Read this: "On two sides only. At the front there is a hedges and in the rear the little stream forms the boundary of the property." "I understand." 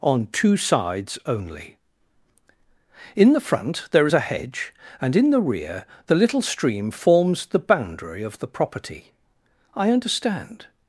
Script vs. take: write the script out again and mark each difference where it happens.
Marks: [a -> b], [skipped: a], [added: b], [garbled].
"On two sides only. [At -> In] the front there is a [hedges -> hedge] and in the rear the little stream forms the boundary of the property." "I understand."